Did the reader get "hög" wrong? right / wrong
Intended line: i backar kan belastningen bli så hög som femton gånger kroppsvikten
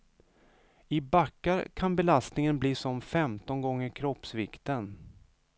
wrong